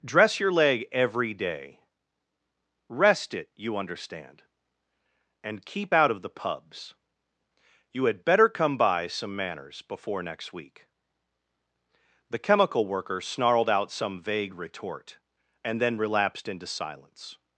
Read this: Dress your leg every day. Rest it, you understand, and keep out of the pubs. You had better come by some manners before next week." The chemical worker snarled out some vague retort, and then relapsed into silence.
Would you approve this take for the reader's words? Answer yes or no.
yes